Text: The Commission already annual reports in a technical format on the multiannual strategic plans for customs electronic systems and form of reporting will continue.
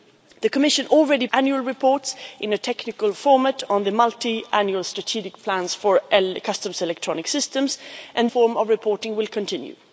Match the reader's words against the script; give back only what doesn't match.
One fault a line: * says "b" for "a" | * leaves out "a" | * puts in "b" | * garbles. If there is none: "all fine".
all fine